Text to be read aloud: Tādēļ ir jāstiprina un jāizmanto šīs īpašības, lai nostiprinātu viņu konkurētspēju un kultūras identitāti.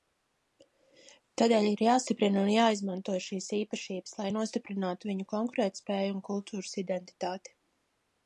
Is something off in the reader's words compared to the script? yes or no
no